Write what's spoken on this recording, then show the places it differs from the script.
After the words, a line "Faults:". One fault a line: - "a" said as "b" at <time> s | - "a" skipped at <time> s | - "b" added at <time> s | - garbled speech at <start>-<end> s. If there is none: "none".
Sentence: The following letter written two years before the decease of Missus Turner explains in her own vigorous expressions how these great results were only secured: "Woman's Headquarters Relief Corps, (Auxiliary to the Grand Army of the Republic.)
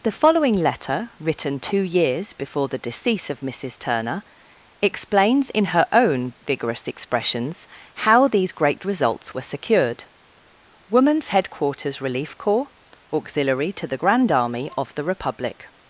The following letter written two years before the decease of Missus Turner explains in her own vigorous expressions how these great results were secured: "Woman's Headquarters Relief Corps, (Auxiliary to the Grand Army of the Republic.)
Faults:
- "only" skipped at 9.5 s